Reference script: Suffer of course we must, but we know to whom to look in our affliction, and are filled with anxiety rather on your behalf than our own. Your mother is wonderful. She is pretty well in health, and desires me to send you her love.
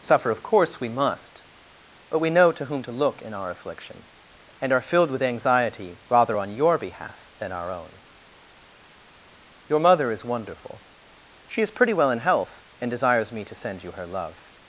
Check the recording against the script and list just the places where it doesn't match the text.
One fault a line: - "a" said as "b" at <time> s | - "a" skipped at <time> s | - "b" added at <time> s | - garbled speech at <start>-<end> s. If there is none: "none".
none